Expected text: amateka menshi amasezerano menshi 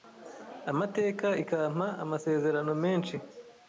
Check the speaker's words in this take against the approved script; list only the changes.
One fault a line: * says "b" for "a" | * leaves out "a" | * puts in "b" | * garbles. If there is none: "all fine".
* says "ikampa" for "menshi"